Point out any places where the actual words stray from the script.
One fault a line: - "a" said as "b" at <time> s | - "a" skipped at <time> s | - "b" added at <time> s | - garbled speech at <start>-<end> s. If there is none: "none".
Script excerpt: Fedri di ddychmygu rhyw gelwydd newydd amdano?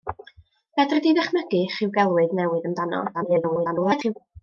- garbled speech at 3.1-4.1 s